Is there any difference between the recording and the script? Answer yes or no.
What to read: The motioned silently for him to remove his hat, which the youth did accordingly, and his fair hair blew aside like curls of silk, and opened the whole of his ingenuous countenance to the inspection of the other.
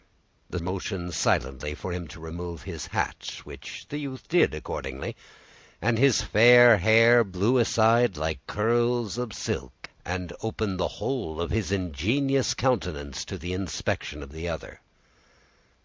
no